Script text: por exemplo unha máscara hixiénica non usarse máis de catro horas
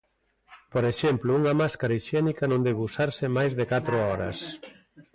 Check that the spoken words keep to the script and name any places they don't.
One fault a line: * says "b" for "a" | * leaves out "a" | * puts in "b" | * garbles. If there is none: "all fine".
* puts in "debe"